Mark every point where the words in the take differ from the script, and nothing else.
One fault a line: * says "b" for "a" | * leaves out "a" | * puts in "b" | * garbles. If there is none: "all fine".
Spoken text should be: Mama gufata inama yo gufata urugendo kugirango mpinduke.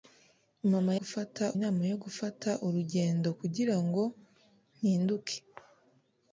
all fine